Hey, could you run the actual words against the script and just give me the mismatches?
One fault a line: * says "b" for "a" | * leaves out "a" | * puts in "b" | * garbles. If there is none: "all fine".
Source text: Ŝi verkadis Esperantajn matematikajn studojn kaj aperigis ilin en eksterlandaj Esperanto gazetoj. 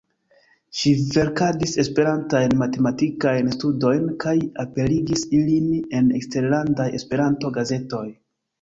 all fine